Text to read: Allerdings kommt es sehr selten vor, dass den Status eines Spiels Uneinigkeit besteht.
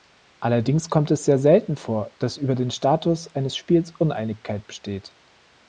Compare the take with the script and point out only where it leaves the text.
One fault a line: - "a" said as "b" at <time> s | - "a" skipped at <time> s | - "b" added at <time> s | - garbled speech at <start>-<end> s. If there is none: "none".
- "über" added at 2.4 s